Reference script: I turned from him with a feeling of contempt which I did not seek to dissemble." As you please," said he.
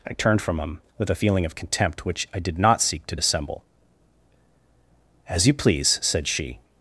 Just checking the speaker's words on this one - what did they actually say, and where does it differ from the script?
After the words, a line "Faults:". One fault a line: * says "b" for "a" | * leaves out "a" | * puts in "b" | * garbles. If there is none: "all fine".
I turned from him with a feeling of contempt which I did not seek to dissemble." As you please," said she.
Faults:
* says "she" for "he"